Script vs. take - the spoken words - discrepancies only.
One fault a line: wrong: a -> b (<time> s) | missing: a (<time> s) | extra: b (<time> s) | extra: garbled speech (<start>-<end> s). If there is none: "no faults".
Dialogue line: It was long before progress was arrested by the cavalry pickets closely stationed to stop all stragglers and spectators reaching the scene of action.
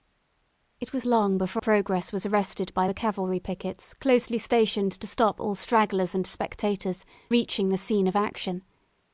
no faults